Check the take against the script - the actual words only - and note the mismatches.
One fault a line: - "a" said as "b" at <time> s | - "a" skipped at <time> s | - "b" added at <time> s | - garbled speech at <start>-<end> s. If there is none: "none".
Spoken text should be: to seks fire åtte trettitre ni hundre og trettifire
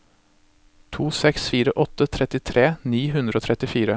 none